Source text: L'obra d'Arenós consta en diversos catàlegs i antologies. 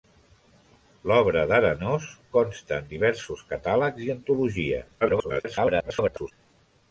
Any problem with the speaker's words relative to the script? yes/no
yes